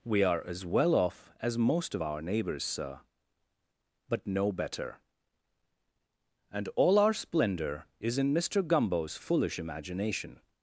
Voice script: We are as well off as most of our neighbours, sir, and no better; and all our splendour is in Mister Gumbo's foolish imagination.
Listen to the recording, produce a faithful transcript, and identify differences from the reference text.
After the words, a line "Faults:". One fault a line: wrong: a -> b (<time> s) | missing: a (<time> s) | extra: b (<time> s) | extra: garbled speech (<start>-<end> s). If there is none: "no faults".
We are as well off as most of our neighbours, sir, but no better; and all our splendour is in Mister Gumbo's foolish imagination.
Faults:
wrong: and -> but (4.1 s)